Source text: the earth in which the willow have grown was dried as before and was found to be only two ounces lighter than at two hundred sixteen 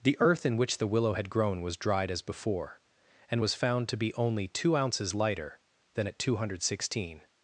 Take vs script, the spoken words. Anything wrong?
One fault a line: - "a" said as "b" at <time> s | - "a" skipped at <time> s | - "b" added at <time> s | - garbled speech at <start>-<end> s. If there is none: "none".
- "have" said as "had" at 1.1 s